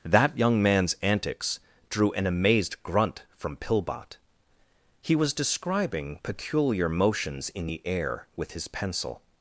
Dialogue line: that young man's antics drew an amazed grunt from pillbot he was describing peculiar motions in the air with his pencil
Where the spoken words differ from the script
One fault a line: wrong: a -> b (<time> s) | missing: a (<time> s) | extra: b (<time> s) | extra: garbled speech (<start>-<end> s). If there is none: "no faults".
no faults